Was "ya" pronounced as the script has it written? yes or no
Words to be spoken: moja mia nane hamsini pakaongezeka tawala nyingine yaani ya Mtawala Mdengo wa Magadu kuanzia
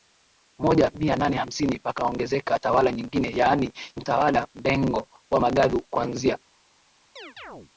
no